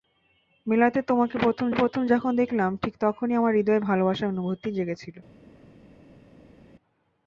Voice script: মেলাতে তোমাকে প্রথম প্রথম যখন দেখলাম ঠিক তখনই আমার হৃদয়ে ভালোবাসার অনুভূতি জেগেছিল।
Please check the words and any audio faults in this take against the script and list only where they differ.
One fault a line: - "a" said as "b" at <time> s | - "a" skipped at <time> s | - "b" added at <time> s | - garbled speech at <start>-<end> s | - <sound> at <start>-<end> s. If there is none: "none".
none